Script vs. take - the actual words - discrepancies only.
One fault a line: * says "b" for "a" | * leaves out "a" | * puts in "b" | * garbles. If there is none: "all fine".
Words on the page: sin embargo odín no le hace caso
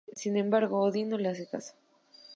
all fine